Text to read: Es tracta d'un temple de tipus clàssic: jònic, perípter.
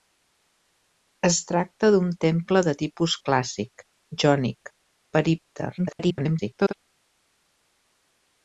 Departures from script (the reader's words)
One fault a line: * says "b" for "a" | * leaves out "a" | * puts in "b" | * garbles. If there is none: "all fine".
* garbles